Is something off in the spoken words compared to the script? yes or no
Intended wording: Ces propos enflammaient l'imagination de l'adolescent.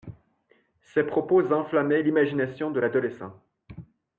no